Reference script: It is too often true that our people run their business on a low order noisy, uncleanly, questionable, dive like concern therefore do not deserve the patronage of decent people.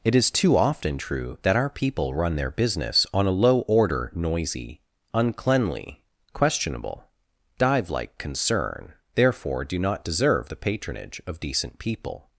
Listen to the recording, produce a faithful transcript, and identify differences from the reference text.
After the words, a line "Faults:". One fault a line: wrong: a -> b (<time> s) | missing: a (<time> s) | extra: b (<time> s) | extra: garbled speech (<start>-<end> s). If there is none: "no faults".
It is too often true that our people run their business on a low order noisy, uncleanly, questionable, dive like concern therefore do not deserve the patronage of decent people.
Faults:
no faults